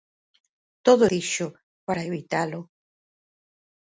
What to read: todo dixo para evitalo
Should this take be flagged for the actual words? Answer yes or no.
no